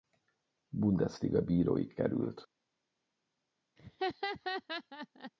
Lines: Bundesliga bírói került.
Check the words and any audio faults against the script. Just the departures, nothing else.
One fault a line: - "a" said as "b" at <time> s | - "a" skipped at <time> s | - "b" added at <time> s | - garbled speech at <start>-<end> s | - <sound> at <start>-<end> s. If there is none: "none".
- laugh at 3.8-5.3 s